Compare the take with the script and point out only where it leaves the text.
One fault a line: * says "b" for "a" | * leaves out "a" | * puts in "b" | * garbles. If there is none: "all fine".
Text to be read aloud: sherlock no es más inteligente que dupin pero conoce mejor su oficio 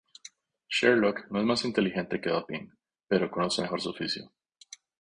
all fine